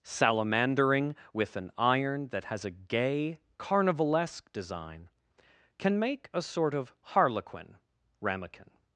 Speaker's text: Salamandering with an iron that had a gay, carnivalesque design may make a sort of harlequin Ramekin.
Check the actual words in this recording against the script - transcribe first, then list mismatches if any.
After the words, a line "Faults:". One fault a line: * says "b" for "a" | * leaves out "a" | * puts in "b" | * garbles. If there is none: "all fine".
Salamandering with an iron that has a gay, carnivalesque design can make a sort of harlequin Ramekin.
Faults:
* says "has" for "had"
* says "can" for "may"